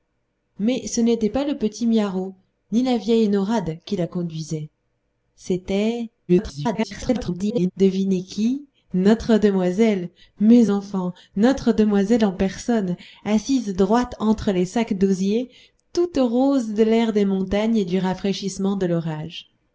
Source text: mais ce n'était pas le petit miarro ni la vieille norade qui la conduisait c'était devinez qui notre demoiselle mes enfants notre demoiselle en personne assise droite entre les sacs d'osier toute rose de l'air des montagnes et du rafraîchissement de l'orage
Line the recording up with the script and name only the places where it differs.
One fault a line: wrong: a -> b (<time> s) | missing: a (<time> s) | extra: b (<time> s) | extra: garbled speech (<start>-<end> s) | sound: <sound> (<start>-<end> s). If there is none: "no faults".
extra: garbled speech (6.3-7.7 s)